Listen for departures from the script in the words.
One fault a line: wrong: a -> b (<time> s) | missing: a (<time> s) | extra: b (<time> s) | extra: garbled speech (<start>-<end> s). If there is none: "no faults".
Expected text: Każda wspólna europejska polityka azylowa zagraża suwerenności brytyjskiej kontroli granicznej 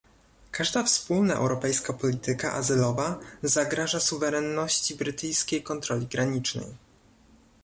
no faults